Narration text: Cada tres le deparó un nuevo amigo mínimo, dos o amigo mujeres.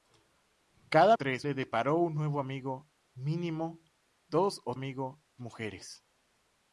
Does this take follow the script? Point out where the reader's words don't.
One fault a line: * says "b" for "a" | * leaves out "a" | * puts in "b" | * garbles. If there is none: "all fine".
all fine